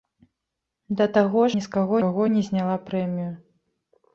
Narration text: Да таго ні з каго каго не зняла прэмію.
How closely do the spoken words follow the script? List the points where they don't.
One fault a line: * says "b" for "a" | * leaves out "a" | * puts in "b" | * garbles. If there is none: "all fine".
all fine